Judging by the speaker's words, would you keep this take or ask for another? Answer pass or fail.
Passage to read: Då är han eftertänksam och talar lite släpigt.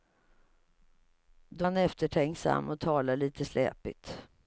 fail